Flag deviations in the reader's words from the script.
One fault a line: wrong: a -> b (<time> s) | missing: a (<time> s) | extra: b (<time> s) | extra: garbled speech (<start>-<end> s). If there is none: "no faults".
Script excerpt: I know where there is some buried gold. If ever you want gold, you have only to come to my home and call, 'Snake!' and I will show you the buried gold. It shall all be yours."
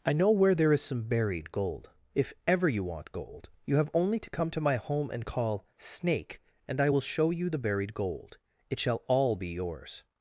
no faults